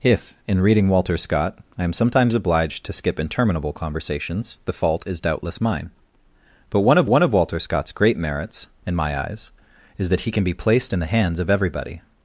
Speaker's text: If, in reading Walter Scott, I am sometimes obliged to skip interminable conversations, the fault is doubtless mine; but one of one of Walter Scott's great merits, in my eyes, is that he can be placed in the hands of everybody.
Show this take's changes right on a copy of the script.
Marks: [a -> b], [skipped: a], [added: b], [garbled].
If, in reading Walter Scott, I am sometimes obliged to skip interminable conversations, the fault is doubtless mine; but one of one of Walter Scott's great merits, in my eyes, is that he can be placed in the hands of everybody.